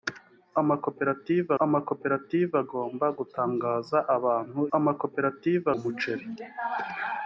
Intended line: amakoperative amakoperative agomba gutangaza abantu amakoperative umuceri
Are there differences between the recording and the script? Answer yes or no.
no